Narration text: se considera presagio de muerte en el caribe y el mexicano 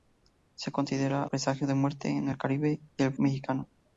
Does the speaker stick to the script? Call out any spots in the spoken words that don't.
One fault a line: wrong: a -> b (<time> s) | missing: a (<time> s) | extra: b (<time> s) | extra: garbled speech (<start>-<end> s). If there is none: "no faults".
no faults